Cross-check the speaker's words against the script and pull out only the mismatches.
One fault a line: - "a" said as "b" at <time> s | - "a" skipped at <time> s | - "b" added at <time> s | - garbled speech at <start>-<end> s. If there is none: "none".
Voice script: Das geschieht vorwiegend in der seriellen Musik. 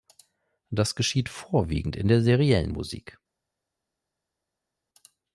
none